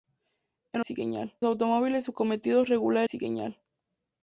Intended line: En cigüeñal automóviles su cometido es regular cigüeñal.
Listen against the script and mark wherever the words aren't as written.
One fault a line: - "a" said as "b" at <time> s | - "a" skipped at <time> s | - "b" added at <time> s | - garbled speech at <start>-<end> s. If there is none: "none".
none